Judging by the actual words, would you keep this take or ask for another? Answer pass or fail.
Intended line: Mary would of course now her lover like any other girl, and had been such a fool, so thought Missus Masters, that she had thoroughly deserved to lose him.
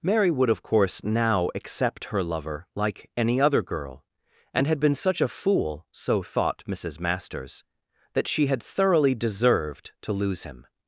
fail